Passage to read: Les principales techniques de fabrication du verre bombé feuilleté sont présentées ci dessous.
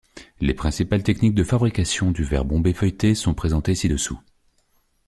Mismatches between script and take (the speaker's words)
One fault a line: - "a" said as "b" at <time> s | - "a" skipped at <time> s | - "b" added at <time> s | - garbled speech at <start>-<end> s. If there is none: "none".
none